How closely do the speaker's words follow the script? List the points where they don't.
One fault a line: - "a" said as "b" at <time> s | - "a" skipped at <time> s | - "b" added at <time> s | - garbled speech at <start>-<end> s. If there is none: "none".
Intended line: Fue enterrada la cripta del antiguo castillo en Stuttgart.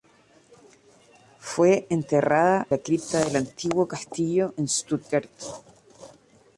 none